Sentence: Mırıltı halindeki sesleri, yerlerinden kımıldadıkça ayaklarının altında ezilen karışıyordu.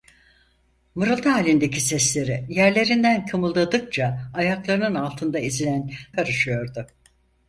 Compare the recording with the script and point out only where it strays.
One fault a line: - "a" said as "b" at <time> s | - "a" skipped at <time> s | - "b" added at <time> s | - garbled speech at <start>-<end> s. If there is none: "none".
none